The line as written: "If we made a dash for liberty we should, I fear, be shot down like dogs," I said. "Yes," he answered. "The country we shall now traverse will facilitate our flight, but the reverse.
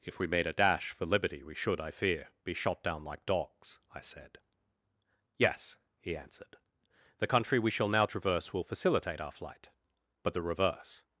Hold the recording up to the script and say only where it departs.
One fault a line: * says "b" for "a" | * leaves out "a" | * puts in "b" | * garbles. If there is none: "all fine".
all fine